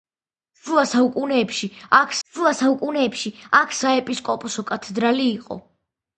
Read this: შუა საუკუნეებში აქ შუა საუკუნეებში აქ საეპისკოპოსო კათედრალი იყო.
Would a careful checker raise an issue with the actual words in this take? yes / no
no